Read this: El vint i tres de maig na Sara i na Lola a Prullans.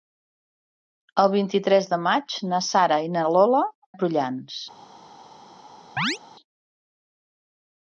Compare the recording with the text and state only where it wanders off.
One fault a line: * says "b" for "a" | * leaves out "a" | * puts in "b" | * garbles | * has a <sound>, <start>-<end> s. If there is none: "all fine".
* has a chirp, 6.0-6.2 s